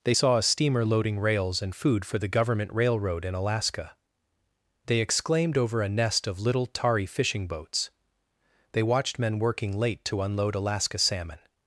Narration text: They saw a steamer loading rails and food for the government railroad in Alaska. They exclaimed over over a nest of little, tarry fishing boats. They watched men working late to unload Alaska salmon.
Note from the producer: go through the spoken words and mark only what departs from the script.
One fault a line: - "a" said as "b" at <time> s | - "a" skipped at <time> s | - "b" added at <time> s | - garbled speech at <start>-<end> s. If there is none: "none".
- "over" skipped at 5.8 s